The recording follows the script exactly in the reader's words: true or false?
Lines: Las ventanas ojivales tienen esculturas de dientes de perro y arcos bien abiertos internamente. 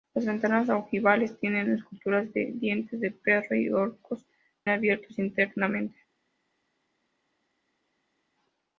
false